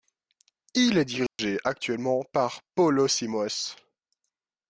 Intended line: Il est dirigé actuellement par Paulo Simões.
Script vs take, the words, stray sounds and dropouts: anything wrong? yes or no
yes